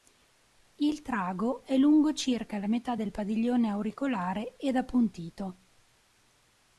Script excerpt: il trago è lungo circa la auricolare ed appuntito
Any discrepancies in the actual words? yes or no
yes